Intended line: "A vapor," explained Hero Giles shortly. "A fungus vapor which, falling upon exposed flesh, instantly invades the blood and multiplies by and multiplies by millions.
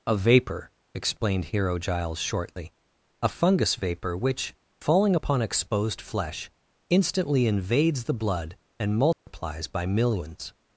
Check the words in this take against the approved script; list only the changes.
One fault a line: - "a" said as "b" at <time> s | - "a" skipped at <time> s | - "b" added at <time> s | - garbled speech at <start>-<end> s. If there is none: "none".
- "and multiplies by" skipped at 9.9 s